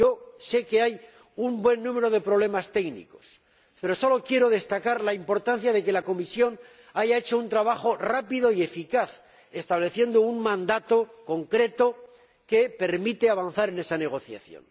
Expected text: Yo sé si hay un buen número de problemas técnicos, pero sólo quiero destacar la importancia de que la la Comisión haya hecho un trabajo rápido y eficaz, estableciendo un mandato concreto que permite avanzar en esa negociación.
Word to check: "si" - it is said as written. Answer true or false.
false